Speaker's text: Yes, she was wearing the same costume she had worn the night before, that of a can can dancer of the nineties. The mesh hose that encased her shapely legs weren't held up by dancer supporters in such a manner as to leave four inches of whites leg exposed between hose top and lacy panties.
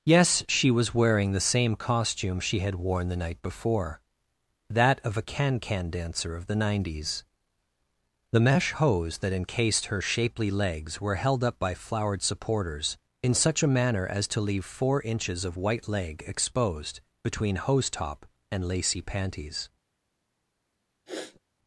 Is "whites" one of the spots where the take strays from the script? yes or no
yes